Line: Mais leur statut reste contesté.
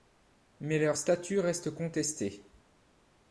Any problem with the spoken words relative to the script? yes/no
no